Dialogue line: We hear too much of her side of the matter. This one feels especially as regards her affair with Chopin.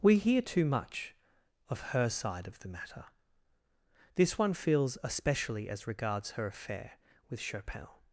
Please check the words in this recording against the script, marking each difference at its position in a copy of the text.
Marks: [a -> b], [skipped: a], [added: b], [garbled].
We hear too much of her side of the matter. This one feels especially as regards her affair with Chopin.